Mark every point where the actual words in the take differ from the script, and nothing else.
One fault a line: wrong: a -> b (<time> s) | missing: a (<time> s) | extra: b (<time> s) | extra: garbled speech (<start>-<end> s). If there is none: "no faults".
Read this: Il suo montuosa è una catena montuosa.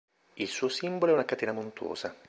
wrong: montuosa -> simbolo (0.7 s)